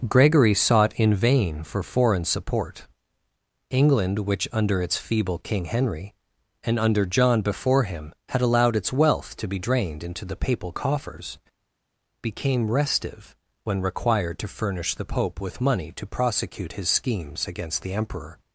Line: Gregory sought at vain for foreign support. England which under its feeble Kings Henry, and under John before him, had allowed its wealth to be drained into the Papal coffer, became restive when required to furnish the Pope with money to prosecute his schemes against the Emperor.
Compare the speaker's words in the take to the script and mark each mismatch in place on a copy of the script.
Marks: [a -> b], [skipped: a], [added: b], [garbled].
Gregory sought [at -> in] vain for foreign support. England which under its feeble [Kings -> King] Henry, and under John before him, had allowed its wealth to be drained into the Papal [coffer, -> coffers] became restive when required to furnish the Pope with money to prosecute his schemes against the Emperor.